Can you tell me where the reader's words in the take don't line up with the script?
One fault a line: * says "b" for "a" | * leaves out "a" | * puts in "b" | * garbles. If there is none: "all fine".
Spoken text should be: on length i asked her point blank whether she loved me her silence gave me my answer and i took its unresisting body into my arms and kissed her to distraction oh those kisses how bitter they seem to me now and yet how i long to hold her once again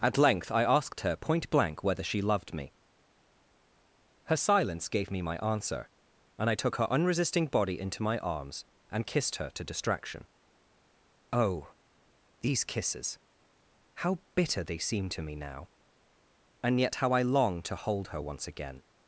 * says "at" for "on"
* says "her" for "its"
* says "these" for "those"